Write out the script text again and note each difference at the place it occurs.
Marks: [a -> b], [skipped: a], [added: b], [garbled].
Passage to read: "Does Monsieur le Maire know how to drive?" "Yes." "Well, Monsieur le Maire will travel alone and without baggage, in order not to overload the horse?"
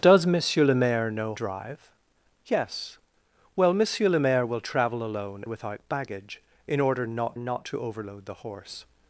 "Does Monsieur le Maire know [skipped: how to] drive?" "Yes." "Well, Monsieur le Maire will travel alone [skipped: and] without baggage, in order not [added: not] to overload the horse?"